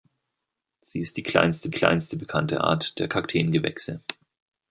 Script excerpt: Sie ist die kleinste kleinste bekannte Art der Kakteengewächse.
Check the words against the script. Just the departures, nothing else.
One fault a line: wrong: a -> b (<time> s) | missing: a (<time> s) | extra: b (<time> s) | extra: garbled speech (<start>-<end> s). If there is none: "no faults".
no faults